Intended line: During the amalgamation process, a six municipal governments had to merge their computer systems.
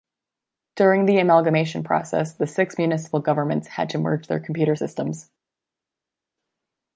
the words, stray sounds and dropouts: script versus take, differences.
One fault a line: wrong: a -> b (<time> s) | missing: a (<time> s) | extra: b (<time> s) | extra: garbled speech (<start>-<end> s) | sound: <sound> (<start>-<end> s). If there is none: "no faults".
wrong: a -> the (2.3 s)